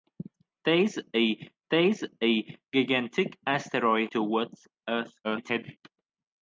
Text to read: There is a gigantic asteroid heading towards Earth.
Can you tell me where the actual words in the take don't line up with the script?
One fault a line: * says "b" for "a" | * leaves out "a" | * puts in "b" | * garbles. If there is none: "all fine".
* puts in "there is a"
* leaves out "heading"
* garbles